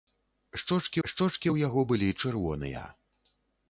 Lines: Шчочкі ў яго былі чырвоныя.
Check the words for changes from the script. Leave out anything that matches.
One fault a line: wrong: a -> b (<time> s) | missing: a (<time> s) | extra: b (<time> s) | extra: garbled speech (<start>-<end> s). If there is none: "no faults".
extra: шчочкі (1.1 s)